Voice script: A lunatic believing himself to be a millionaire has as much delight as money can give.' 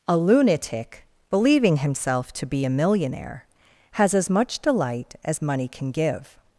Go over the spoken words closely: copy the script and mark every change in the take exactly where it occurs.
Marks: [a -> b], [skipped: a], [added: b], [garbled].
A lunatic believing himself to be a millionaire has as much delight as money can give.'